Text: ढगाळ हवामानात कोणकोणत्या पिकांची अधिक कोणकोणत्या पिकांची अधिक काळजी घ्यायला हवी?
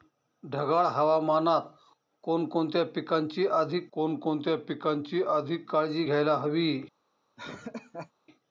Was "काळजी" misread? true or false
false